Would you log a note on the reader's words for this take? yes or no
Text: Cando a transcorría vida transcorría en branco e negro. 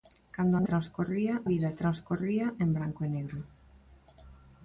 no